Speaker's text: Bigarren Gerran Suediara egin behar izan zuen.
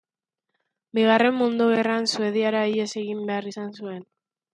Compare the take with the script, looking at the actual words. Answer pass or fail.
fail